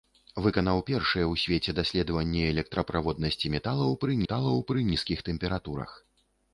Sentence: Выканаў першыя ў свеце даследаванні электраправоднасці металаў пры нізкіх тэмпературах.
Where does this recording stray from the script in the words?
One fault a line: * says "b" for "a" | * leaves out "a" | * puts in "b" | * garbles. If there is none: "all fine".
* puts in "металаў пры"